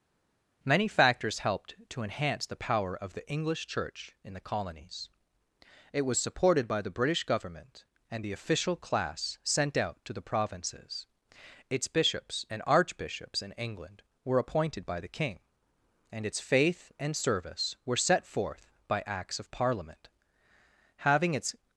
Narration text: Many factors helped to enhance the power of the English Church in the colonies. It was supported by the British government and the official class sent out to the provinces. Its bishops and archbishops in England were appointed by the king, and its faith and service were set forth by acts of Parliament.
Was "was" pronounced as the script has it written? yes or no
yes